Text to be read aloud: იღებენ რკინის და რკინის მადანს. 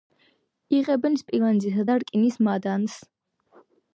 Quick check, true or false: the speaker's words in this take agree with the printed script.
false